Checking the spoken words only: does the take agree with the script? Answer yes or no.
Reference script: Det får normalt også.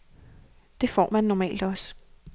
no